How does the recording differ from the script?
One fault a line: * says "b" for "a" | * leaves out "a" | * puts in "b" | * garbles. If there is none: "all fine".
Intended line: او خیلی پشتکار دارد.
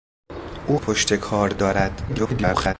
* leaves out "خیلی"
* garbles